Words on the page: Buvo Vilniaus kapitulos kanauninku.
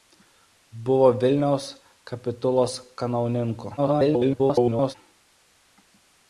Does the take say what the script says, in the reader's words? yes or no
no